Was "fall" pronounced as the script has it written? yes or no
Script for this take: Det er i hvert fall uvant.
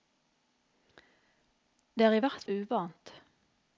no